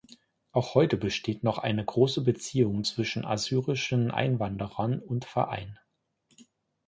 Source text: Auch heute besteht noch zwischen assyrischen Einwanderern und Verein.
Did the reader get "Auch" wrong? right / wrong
right